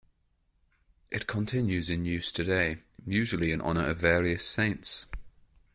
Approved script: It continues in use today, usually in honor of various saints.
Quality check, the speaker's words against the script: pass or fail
pass